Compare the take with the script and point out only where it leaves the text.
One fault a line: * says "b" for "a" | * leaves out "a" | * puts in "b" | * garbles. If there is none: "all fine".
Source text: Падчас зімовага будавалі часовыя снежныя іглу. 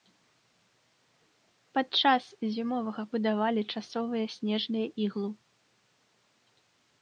all fine